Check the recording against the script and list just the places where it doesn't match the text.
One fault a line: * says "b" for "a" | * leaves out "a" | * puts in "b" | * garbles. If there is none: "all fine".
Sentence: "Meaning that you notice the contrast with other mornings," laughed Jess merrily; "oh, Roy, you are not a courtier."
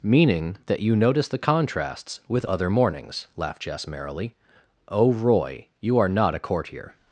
* says "contrasts" for "contrast"